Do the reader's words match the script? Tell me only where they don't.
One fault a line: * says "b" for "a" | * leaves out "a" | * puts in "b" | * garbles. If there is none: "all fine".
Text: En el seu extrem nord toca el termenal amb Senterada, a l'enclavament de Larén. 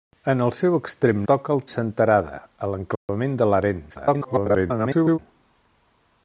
* leaves out "nord"
* leaves out "termenal amb"
* garbles